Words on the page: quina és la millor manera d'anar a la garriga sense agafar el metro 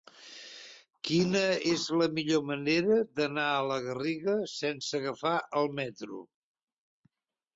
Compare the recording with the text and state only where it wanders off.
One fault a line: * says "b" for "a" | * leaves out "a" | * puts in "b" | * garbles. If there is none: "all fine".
all fine